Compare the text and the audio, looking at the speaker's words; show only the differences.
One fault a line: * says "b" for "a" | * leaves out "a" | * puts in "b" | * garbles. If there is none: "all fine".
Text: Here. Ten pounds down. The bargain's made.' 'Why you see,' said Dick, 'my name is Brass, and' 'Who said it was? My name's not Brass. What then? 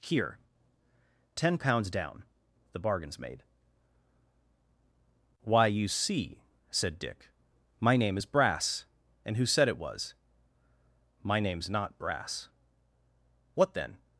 all fine